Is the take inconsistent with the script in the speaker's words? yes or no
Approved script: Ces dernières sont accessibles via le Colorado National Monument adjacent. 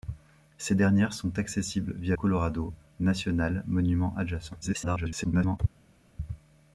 yes